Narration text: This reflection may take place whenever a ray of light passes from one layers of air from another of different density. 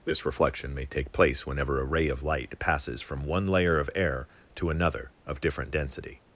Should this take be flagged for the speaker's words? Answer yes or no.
yes